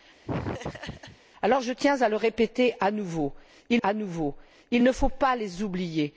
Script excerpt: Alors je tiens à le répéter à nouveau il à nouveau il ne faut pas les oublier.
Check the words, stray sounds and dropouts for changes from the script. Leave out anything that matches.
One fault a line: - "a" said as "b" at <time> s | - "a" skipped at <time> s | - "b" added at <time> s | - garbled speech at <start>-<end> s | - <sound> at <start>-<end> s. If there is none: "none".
- laugh at 0.3-1.2 s